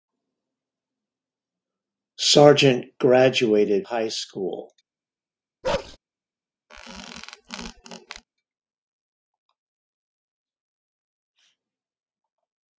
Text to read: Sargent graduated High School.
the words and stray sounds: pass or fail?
fail